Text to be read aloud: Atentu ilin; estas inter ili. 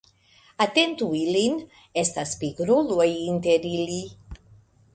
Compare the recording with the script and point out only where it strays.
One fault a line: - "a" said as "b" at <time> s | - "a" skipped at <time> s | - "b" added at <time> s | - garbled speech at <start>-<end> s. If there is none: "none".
- "pigruloj" added at 2.4 s